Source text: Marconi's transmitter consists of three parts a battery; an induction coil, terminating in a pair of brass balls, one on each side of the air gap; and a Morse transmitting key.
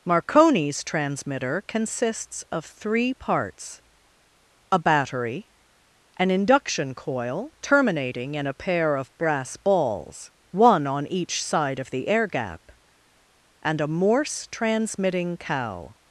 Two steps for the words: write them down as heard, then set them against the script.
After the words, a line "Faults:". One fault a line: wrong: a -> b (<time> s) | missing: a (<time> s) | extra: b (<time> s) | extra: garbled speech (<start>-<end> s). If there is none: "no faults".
Marconi's transmitter consists of three parts a battery; an induction coil, terminating in a pair of brass balls, one on each side of the air gap; and a Morse transmitting cow.
Faults:
wrong: key -> cow (15.4 s)